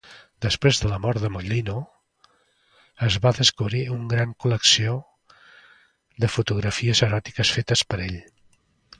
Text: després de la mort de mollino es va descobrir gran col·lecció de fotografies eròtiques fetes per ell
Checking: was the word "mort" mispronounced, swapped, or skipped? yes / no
no